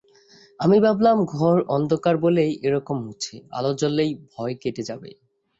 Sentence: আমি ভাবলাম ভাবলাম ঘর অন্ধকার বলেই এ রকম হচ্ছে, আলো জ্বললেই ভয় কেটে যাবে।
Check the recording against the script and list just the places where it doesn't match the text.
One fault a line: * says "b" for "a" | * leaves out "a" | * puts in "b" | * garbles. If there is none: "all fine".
* leaves out "ভাবলাম"